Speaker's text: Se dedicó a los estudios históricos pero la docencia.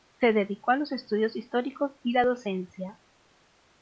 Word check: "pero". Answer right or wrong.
wrong